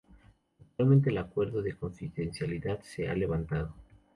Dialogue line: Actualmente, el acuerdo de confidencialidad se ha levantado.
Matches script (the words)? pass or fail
pass